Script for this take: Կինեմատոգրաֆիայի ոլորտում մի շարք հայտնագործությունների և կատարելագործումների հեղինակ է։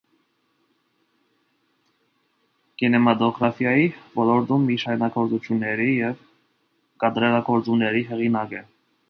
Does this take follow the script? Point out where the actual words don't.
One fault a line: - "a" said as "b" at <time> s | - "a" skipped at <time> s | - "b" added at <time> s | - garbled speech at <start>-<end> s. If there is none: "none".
- "շարք" skipped at 4.8 s